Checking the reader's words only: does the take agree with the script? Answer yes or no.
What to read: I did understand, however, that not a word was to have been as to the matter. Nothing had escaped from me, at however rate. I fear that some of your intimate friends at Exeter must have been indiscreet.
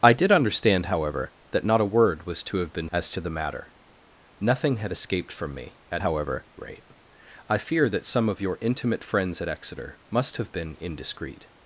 yes